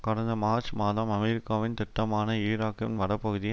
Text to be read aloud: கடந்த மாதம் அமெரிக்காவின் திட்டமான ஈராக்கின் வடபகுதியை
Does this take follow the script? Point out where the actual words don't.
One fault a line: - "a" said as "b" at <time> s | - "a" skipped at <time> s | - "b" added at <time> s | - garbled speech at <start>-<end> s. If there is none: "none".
- "மார்ச்" added at 0.3 s